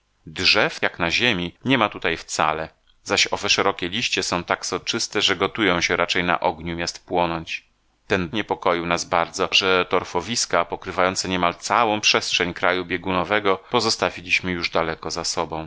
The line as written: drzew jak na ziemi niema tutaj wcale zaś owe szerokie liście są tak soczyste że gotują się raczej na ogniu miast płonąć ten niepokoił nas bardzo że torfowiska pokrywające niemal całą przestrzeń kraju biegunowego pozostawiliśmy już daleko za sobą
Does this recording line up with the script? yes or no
yes